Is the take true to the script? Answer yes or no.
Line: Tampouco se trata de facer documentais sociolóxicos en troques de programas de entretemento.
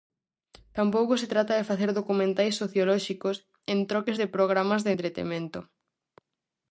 yes